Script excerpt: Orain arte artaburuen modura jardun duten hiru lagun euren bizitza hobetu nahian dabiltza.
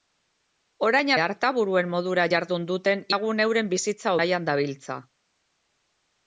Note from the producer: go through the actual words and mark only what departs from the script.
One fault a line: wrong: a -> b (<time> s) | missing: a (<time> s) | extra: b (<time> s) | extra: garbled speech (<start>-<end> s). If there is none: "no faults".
missing: arte (1.1 s)
missing: hiru (3.0 s)
missing: hobetu (4.2 s)